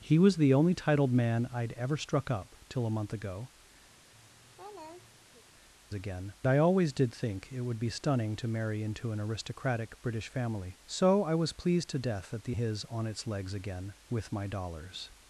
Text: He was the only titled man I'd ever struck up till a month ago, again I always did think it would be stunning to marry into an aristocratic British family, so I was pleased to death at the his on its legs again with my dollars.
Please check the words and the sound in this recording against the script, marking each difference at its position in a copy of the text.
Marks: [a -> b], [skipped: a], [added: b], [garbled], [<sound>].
He was the only titled man I'd ever struck up till a month ago, [laugh] again I always did think it would be stunning to marry into an aristocratic British family, so I was pleased to death at the his on its legs again with my dollars.